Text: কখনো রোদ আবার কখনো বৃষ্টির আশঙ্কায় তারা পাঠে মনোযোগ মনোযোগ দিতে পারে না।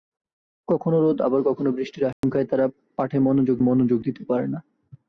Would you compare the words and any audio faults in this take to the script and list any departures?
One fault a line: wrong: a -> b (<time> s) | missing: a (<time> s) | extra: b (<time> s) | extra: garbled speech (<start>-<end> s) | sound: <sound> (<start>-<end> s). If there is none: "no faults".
sound: dropout (2.1-2.2 s)